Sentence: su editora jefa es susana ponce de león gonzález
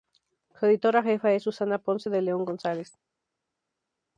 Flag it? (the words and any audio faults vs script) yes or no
no